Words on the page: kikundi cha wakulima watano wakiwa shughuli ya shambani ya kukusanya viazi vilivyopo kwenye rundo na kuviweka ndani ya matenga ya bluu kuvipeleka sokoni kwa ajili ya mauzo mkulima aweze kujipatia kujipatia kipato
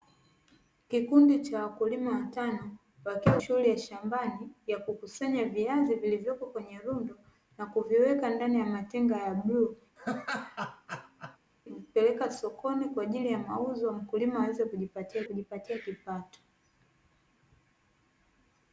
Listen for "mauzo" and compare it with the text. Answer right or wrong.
right